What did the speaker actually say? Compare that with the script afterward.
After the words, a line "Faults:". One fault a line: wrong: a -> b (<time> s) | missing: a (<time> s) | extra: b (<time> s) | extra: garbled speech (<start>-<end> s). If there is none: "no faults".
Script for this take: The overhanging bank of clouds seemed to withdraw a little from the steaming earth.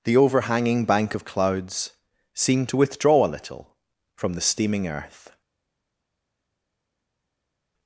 The overhanging bank of clouds seemed to withdraw a little from the steaming earth.
Faults:
no faults